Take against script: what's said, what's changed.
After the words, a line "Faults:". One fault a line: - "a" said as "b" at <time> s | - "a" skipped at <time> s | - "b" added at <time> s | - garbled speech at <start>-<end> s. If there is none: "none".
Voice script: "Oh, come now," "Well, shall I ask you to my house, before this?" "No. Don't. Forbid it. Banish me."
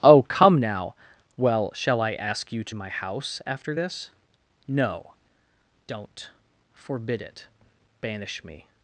"Oh, come now," "Well, shall I ask you to my house, after this?" "No. Don't. Forbid it. Banish me."
Faults:
- "before" said as "after" at 3.5 s